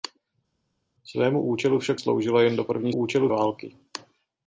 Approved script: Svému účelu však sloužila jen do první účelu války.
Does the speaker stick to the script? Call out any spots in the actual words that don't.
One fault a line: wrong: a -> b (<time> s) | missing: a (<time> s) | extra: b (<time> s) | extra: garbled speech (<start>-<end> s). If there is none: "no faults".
no faults